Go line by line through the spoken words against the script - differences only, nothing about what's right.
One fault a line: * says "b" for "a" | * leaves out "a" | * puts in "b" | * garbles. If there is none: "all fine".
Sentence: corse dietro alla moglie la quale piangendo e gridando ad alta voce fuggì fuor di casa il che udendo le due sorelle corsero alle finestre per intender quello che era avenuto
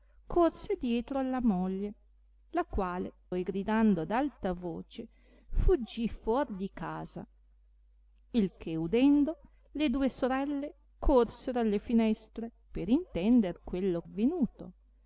* leaves out "piangendo"
* leaves out "che era"